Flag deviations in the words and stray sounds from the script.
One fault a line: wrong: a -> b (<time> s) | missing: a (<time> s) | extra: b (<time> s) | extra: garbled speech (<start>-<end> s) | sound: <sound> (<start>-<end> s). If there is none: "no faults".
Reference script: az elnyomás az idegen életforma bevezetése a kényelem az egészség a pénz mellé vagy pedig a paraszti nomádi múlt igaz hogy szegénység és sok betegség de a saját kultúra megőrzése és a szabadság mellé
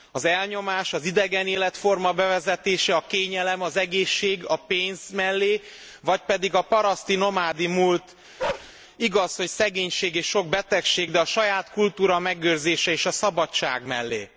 sound: bark (8.4-8.7 s)